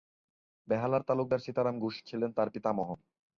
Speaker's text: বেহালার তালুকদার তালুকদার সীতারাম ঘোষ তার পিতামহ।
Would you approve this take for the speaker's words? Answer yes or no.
no